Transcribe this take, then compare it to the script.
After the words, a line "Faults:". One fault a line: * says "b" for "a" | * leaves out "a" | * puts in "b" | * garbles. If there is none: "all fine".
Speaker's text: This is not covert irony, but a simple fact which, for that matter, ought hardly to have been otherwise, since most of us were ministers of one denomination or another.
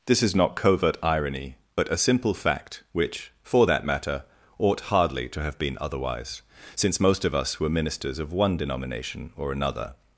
This is not covert irony, but a simple fact which, for that matter, ought hardly to have been otherwise, since most of us were ministers of one denomination or another.
Faults:
all fine